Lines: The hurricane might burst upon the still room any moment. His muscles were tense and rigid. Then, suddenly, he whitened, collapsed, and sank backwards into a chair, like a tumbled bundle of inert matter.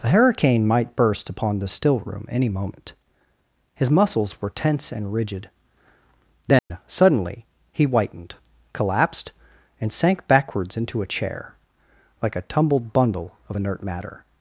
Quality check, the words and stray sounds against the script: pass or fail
fail